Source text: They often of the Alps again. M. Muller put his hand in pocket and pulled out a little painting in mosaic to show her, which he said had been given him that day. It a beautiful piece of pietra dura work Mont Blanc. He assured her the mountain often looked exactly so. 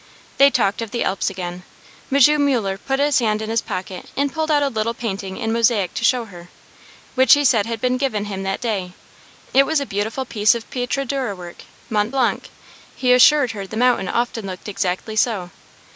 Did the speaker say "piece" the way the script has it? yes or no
yes